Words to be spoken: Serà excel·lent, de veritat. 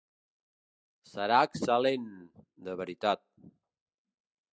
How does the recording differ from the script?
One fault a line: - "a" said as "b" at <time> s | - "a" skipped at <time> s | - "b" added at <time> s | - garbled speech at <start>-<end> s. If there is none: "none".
none